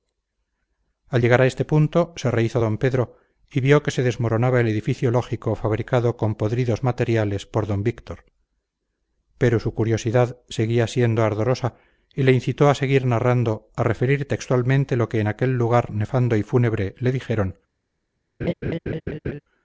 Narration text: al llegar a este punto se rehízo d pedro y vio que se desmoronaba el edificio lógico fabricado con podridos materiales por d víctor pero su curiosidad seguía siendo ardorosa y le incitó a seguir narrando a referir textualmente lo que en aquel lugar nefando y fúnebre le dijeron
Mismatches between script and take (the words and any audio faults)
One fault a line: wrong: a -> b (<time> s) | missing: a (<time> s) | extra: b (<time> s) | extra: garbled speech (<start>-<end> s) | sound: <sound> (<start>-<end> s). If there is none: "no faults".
sound: laugh (18.4-19.4 s)